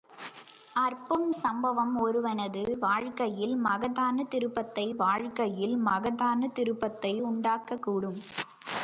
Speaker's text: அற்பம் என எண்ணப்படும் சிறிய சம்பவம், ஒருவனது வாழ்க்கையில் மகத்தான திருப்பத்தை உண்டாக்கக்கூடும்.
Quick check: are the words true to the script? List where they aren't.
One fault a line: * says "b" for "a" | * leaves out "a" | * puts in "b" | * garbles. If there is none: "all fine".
* says "சம்பவம் ஒருவனது வாழ்க்கையில் மகத்தான திருப்பத்தை" for "என எண்ணப்படும் சிறிய சம்பவம் ஒருவனது"